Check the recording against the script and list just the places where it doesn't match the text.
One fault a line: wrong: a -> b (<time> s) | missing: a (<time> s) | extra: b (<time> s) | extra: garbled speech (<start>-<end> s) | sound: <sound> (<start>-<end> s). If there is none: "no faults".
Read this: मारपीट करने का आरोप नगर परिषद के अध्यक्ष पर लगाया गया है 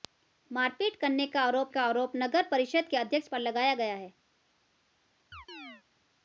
extra: का आरोप (1.7 s)
sound: chirp (5.3-5.8 s)